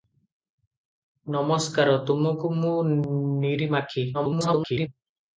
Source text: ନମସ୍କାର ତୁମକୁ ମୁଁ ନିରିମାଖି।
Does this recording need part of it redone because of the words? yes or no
yes